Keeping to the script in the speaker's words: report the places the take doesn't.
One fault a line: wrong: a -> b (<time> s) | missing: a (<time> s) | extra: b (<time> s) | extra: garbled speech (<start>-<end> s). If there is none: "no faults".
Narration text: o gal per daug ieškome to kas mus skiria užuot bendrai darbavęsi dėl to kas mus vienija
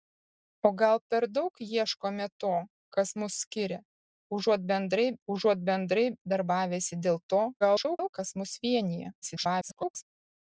extra: užuot bendrai (5.3 s)
extra: garbled speech (7.6-8.1 s)
extra: garbled speech (9.2-10.0 s)